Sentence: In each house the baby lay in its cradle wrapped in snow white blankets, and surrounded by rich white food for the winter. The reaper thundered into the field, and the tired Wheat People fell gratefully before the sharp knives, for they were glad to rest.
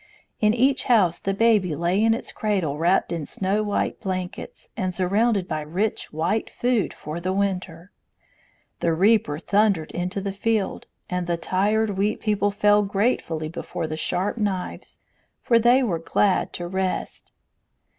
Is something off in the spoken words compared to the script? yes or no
no